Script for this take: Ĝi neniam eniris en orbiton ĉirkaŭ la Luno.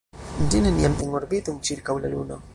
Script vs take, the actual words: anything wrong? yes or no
yes